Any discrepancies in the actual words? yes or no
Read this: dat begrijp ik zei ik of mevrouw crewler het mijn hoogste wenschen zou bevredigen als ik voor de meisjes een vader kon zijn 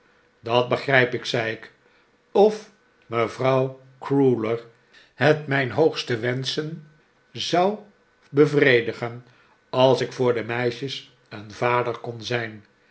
no